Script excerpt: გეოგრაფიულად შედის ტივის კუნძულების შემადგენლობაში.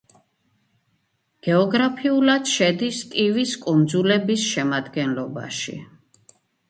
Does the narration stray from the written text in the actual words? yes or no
no